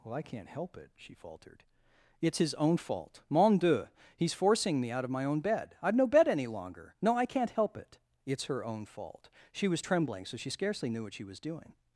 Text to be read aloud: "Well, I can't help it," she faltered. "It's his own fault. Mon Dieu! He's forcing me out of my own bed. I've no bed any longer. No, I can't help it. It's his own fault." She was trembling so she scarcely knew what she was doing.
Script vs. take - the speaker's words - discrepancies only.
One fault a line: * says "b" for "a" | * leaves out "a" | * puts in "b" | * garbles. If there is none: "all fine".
* says "her" for "his"